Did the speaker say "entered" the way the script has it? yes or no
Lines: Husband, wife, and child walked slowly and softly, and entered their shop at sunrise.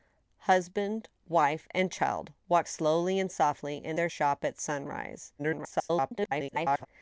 no